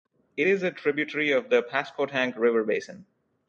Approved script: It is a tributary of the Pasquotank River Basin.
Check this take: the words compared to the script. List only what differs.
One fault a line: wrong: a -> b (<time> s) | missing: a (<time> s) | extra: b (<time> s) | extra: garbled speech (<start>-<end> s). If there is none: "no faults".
no faults